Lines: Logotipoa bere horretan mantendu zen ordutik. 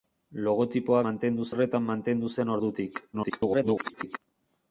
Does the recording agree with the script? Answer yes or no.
no